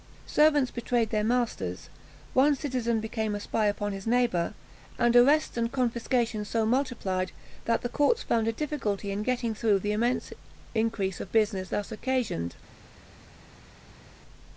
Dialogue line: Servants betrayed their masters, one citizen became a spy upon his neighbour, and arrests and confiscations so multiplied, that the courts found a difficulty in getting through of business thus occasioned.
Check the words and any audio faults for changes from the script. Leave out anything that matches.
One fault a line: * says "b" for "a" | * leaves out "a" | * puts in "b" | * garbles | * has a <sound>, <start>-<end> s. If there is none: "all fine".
* puts in "the immense increase"